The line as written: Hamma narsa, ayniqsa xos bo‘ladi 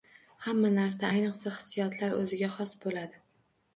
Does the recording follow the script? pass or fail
fail